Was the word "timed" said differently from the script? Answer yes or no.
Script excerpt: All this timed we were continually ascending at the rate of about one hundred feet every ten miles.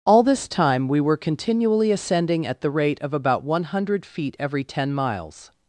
yes